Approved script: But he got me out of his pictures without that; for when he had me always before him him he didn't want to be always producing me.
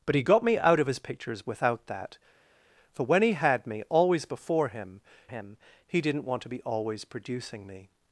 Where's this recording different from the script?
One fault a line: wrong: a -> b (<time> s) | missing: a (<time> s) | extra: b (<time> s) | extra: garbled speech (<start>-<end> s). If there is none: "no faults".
no faults